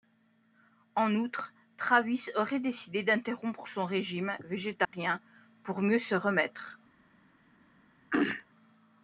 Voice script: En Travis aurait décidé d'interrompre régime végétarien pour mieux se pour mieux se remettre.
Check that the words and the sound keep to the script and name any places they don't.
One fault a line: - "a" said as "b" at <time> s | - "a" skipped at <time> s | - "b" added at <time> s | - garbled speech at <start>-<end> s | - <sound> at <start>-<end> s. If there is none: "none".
- "outre" added at 1.1 s
- "son" added at 3.7 s
- dropout at 4.8-4.9 s
- "pour mieux se" skipped at 6.1 s
- throat clearing at 8.1-8.4 s